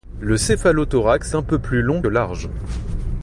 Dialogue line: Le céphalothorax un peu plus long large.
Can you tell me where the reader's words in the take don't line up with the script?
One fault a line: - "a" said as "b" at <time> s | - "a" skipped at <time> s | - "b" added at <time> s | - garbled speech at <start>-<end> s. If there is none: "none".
none